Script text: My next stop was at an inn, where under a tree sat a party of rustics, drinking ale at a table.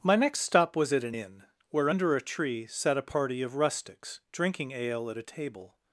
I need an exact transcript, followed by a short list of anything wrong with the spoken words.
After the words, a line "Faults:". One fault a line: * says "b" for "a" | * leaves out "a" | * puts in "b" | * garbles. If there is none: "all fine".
My next stop was at an inn, where under a tree sat a party of rustics, drinking ale at a table.
Faults:
all fine